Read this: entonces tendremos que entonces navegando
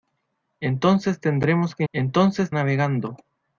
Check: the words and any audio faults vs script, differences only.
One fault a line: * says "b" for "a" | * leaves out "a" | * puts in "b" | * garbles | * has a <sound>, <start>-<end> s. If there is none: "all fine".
all fine